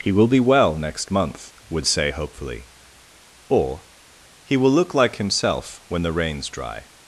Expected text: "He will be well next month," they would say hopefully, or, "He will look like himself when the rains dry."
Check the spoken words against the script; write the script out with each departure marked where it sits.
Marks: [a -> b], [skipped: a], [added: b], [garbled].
"He will be well next month," [skipped: they] would say hopefully, or, "He will look like himself when the rains dry."